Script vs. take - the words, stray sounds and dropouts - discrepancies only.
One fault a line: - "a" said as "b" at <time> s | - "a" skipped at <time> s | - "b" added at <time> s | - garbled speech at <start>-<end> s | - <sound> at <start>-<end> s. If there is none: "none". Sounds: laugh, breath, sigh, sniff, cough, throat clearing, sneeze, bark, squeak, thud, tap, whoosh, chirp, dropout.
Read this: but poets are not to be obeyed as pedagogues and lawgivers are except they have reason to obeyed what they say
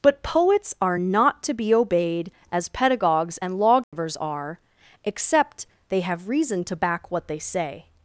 - dropout at 3.8-3.9 s
- "obeyed" said as "back" at 6.7 s